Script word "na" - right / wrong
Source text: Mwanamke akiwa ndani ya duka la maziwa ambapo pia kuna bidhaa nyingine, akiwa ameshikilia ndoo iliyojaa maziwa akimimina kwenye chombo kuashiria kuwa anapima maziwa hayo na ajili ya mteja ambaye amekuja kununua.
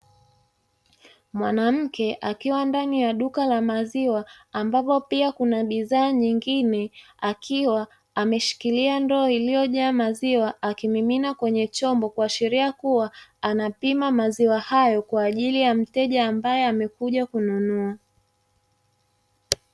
wrong